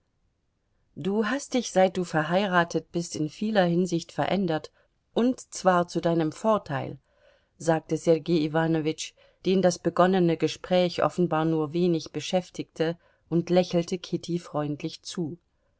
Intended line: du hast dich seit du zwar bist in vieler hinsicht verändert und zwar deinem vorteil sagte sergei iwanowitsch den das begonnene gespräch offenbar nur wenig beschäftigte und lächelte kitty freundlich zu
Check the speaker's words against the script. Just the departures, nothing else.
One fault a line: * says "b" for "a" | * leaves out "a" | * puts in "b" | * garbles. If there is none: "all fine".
* says "verheiratet" for "zwar"
* puts in "zu"